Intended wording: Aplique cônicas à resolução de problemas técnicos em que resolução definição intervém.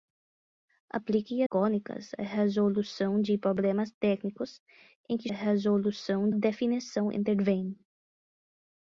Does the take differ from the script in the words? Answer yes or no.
no